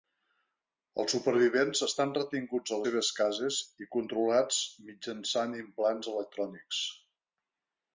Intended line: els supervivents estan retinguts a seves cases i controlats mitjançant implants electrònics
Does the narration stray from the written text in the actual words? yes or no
no